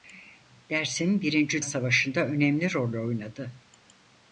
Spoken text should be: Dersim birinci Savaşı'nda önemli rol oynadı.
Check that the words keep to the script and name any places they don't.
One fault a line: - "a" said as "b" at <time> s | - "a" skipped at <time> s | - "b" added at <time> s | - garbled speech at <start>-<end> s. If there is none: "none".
none